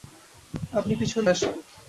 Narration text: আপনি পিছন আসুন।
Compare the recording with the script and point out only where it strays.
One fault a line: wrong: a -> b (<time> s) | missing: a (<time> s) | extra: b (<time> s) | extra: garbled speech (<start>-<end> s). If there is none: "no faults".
no faults